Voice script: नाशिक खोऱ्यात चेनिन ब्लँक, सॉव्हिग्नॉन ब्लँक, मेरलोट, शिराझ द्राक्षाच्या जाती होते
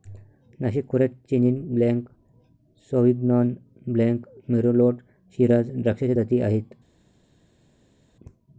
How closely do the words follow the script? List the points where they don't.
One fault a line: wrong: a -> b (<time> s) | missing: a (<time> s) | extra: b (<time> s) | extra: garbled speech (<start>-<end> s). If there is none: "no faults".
wrong: होते -> आहेत (6.4 s)